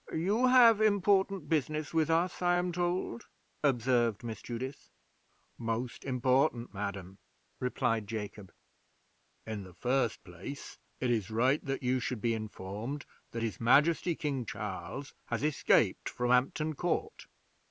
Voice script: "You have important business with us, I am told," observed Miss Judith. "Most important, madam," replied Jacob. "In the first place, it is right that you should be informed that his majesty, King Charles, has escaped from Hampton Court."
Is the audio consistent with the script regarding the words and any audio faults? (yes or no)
yes